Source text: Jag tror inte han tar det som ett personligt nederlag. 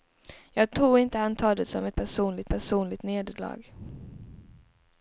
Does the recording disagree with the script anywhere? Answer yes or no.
yes